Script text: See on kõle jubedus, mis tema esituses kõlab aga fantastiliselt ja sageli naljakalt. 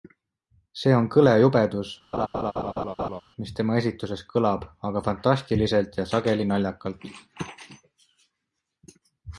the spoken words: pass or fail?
pass